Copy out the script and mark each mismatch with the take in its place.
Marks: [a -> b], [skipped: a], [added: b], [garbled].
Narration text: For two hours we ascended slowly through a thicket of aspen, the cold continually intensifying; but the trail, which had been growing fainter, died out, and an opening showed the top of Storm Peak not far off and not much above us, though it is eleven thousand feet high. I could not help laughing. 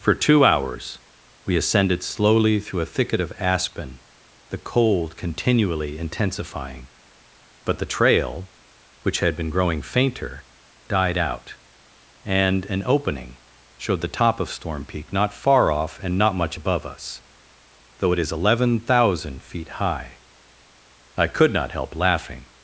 For two hours we ascended slowly through a thicket of aspen, the cold continually intensifying; but the trail, which had been growing fainter, died out, and an opening showed the top of Storm Peak not far off and not much above us, though it is eleven thousand feet high. I could not help laughing.